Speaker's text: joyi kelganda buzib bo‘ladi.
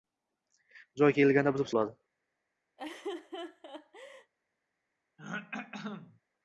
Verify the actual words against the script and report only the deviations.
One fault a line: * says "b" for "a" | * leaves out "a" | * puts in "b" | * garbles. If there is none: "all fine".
all fine